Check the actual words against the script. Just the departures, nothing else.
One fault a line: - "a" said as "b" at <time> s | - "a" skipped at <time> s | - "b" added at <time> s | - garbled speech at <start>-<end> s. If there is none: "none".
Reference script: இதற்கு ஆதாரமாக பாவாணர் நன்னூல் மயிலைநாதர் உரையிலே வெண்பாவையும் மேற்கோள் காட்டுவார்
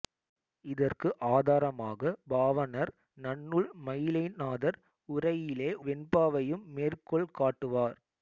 none